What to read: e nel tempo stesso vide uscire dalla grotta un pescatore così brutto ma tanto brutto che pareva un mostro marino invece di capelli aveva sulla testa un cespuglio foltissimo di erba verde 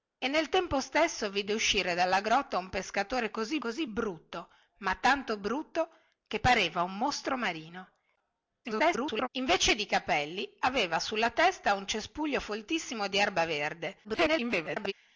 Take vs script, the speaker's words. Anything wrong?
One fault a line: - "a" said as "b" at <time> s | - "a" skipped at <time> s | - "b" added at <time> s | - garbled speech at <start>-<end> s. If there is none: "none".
- "così" added at 3.6 s
- garbled speech at 8.6-9.3 s
- garbled speech at 14.0-14.9 s